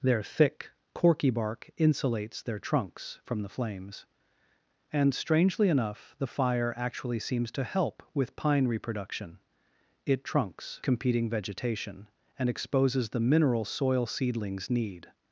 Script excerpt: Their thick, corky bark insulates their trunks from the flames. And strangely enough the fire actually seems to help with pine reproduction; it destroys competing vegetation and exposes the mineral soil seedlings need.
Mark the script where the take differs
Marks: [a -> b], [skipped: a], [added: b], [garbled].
Their thick, corky bark insulates their trunks from the flames. And strangely enough the fire actually seems to help with pine reproduction; it [destroys -> trunks] competing vegetation and exposes the mineral soil seedlings need.